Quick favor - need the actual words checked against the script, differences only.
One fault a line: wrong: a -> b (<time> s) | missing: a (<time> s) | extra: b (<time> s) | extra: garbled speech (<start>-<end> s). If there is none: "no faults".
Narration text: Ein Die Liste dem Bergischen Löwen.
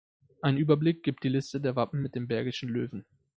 extra: Überblick gibt (0.6 s)
extra: der Wappen mit (1.6 s)